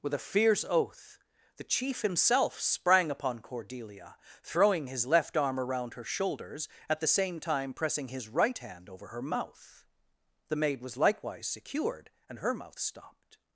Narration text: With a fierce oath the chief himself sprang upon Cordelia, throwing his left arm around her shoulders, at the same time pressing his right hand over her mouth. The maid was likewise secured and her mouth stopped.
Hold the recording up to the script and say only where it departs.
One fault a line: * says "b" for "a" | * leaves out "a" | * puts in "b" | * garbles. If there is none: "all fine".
all fine